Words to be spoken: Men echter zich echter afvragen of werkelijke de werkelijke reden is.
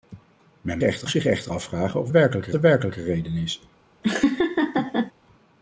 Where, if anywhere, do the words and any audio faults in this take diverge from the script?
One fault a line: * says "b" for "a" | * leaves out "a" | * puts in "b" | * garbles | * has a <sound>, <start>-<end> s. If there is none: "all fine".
* has a laugh, 4.0-5.1 s